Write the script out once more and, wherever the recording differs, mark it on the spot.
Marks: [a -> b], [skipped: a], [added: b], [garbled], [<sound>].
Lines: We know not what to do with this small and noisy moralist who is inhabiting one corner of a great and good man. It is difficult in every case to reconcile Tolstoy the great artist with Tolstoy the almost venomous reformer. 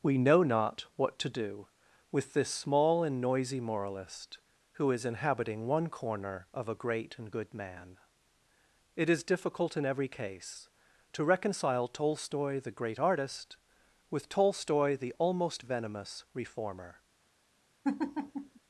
We know not what to do with this small and noisy moralist who is inhabiting one corner of a great and good man. It is difficult in every case to reconcile Tolstoy the great artist with Tolstoy the almost venomous reformer. [laugh]